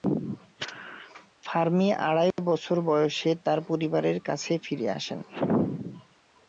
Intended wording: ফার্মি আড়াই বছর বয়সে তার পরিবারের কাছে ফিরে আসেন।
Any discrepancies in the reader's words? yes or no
no